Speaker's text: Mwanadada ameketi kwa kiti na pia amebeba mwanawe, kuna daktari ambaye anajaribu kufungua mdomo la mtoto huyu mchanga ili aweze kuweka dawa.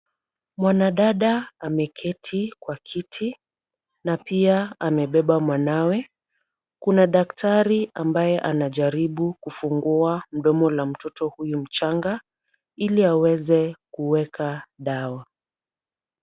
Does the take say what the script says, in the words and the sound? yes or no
yes